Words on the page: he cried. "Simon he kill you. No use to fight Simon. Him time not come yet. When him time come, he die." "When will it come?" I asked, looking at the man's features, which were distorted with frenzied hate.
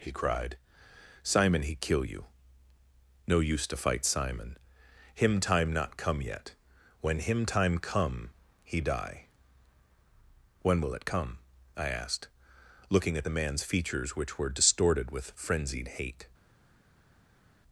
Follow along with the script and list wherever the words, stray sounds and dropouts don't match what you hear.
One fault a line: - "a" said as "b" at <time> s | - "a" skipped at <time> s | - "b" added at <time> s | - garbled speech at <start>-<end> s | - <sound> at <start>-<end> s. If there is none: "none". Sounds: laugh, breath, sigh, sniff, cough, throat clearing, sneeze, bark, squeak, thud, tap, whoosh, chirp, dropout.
none